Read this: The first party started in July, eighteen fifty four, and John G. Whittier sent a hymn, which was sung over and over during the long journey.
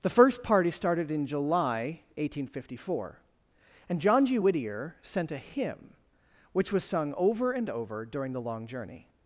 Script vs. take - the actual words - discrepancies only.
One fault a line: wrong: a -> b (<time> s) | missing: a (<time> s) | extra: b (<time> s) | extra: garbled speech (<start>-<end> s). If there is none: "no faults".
no faults